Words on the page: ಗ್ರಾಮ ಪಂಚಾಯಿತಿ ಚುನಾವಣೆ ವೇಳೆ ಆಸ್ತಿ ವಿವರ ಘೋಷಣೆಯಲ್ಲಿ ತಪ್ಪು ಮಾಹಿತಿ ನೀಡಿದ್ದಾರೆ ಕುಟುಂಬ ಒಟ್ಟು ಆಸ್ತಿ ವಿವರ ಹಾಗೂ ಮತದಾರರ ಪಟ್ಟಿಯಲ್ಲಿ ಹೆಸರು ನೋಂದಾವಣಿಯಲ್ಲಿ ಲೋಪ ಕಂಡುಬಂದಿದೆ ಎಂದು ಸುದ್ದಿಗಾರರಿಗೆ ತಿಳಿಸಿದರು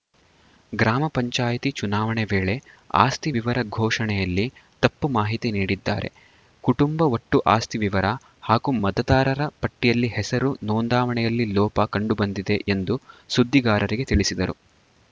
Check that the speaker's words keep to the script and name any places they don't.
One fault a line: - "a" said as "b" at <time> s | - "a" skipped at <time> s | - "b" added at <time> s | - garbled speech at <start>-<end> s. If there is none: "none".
none